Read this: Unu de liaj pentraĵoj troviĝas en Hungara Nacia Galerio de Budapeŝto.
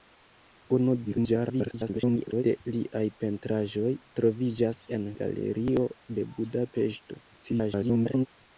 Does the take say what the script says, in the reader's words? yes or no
no